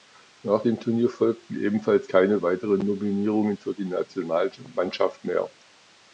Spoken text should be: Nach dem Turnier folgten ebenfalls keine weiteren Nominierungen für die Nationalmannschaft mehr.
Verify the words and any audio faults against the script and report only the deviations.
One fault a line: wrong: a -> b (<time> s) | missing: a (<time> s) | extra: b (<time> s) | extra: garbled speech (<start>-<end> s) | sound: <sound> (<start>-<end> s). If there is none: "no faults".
no faults